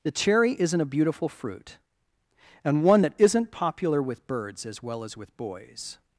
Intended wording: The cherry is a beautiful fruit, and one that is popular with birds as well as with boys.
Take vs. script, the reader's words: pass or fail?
fail